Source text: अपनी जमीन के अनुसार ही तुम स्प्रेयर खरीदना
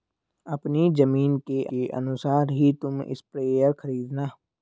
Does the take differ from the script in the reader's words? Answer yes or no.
yes